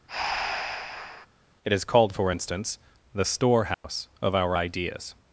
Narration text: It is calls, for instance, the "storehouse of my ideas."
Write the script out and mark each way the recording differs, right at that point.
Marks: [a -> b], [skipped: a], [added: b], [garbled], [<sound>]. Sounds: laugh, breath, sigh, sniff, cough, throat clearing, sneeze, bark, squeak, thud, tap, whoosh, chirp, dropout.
[breath] It is [calls, -> called] for instance, the "storehouse [dropout] of [my -> our] ideas."